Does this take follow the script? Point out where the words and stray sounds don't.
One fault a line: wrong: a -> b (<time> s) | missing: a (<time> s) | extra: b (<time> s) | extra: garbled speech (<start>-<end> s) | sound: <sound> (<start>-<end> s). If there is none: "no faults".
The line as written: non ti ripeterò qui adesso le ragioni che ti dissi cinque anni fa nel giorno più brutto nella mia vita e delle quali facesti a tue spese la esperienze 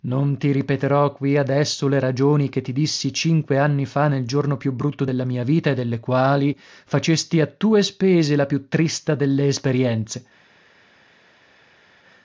wrong: nella -> della (5.0 s)
extra: più trista delle (8.5 s)